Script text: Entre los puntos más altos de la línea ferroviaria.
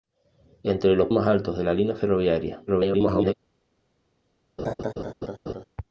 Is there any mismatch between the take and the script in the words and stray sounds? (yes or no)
yes